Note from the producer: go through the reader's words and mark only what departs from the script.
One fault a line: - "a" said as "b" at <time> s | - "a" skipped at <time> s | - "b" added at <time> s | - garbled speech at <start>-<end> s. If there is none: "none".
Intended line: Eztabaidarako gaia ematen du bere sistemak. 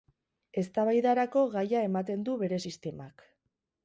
none